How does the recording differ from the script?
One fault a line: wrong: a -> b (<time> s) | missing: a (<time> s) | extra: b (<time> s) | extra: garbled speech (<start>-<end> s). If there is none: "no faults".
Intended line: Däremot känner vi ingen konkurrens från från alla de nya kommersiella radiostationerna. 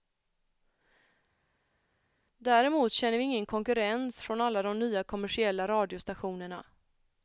missing: från (4.4 s)